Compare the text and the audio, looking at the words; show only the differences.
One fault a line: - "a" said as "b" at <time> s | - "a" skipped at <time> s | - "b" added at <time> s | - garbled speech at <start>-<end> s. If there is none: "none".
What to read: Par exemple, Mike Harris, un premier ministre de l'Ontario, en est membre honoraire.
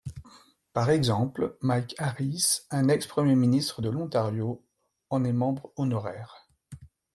- "ex" added at 2.9 s